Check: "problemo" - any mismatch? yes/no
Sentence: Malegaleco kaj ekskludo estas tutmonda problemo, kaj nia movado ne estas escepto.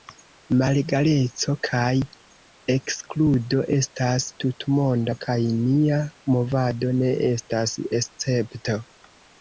yes